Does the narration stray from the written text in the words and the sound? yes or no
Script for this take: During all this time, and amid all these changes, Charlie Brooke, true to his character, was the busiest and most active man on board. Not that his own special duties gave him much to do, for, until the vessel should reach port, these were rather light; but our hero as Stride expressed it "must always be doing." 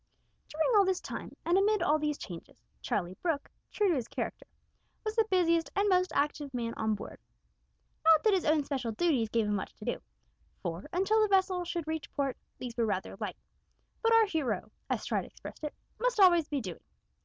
no